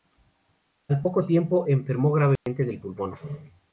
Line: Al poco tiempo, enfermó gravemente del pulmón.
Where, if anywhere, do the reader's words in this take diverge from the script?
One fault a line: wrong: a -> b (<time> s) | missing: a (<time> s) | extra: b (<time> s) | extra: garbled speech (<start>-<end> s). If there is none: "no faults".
no faults